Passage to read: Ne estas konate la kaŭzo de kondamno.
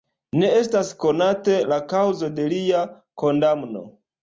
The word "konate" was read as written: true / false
true